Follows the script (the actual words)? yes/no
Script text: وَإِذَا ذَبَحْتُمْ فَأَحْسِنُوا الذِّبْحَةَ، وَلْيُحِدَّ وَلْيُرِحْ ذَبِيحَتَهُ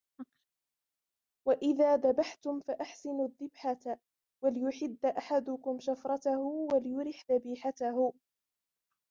no